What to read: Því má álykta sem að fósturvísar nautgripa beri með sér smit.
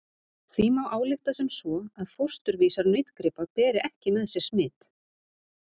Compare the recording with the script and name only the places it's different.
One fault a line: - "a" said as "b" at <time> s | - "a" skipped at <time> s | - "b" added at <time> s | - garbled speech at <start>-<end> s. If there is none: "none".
- "svo" added at 1.6 s
- "ekki" added at 3.9 s